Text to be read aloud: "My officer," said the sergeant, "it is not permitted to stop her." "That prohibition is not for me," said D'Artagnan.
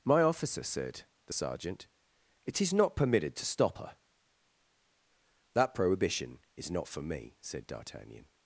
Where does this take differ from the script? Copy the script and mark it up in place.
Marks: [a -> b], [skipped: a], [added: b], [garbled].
"My officer," said the sergeant, "it is not permitted to stop her." "That prohibition is not for me," said D'Artagnan.